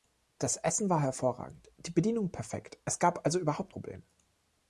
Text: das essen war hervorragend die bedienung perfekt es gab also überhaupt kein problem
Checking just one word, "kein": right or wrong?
wrong